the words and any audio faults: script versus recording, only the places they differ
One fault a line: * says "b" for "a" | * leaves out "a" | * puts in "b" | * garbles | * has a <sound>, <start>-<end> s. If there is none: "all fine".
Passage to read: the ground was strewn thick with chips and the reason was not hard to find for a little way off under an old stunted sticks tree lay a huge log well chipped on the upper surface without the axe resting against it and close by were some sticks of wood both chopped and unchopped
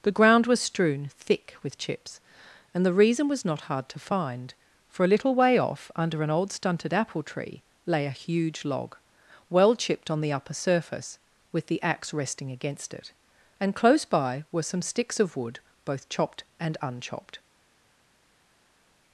* says "apple" for "sticks"
* says "with" for "without"